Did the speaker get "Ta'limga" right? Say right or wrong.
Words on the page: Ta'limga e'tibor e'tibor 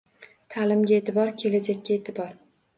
right